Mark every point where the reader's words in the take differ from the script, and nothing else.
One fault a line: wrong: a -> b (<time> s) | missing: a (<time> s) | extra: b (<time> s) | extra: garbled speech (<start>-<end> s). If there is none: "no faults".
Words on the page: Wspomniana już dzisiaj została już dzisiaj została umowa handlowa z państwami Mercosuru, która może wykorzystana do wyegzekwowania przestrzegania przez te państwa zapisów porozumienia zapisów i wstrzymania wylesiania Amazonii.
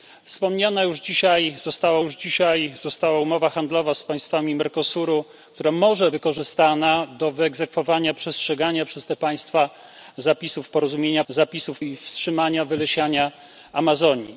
no faults